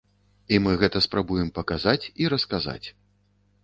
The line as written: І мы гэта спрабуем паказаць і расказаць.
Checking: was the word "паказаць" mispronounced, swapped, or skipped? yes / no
no